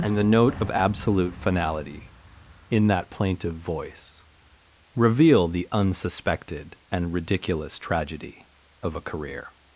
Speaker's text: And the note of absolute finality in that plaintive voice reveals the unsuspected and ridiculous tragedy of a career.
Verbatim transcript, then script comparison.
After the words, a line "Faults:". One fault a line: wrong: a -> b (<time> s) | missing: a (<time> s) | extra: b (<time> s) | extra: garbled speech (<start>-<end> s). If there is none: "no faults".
And the note of absolute finality in that plaintive voice reveal the unsuspected and ridiculous tragedy of a career.
Faults:
wrong: reveals -> reveal (5.0 s)